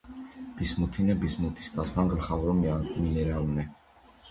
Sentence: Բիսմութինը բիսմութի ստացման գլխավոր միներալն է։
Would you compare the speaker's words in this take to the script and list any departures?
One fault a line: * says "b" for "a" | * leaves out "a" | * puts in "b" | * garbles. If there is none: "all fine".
all fine